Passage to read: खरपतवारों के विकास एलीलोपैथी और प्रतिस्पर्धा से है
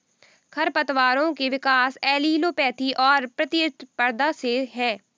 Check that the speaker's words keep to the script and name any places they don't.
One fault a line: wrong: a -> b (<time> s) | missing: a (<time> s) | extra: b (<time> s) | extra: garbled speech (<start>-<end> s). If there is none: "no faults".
no faults